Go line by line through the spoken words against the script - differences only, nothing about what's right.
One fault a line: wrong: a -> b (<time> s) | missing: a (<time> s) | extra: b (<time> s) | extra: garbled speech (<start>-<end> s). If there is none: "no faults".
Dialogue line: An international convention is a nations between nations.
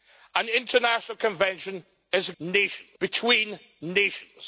no faults